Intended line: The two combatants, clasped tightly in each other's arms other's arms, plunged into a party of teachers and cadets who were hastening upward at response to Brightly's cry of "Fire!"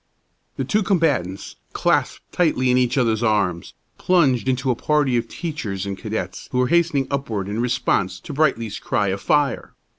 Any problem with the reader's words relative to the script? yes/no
yes